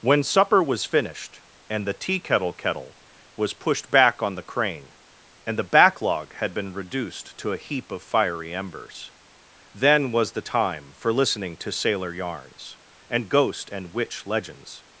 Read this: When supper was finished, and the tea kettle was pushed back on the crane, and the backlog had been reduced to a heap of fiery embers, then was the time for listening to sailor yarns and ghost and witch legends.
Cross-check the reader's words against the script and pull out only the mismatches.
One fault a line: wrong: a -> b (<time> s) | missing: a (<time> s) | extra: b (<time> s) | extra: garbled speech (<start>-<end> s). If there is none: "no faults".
extra: kettle (2.5 s)